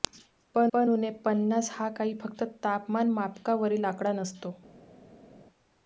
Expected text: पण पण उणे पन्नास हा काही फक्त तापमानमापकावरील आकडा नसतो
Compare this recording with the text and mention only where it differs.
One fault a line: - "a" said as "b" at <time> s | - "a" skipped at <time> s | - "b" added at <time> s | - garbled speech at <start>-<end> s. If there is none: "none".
none